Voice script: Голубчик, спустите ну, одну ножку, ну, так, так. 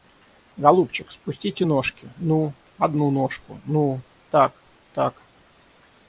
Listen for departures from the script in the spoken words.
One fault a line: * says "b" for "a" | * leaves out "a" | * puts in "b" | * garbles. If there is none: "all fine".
* puts in "ножки"